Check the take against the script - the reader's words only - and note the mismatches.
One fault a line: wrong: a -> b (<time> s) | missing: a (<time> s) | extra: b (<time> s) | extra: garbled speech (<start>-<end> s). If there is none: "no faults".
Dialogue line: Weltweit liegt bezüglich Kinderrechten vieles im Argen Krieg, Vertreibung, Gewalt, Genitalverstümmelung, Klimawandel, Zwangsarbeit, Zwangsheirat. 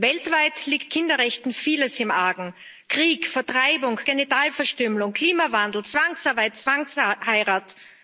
missing: bezüglich (0.9 s)
missing: Gewalt (4.0 s)